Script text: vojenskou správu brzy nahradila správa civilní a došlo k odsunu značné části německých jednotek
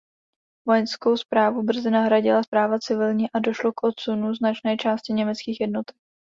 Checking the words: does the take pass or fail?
pass